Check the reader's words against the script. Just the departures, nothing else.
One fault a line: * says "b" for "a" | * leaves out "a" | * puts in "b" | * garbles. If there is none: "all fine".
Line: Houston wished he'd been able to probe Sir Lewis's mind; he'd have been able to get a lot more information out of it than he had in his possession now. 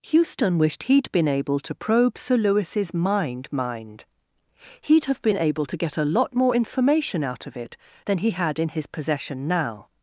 * puts in "mind"